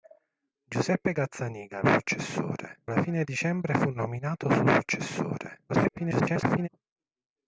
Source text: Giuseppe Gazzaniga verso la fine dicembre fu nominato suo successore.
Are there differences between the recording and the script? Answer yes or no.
yes